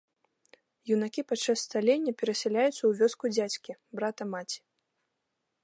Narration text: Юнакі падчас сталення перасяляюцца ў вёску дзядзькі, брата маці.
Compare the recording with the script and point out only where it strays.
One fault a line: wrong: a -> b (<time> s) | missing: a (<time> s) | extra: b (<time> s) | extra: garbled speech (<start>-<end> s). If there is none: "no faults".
no faults